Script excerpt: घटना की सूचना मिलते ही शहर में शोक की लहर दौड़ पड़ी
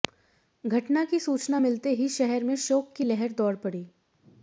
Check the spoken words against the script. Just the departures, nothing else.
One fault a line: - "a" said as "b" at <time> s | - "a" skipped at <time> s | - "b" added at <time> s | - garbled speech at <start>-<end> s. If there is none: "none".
none